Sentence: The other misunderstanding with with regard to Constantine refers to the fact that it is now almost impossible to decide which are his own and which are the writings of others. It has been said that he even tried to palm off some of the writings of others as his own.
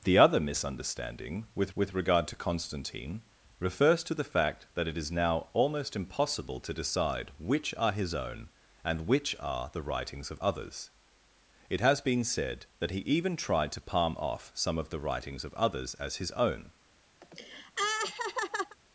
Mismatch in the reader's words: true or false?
false